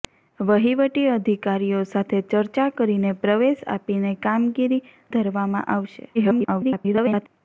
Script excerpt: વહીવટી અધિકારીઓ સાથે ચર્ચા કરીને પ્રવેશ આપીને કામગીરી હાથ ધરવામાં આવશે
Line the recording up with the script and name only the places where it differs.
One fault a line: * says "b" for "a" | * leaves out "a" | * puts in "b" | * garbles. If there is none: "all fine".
* leaves out "હાથ"
* garbles